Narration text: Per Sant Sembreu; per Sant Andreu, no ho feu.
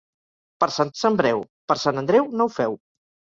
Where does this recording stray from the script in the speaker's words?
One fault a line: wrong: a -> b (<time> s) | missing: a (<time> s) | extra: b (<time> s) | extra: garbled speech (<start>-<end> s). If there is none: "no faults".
no faults